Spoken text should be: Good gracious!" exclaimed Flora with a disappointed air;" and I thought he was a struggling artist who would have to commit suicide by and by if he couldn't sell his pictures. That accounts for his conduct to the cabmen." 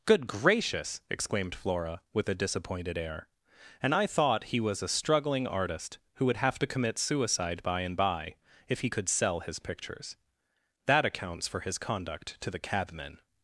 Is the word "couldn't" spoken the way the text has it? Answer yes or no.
no